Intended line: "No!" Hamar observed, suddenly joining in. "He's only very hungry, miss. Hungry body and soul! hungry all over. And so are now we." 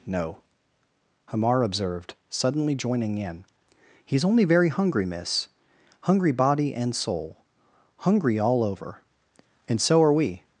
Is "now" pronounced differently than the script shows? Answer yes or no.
yes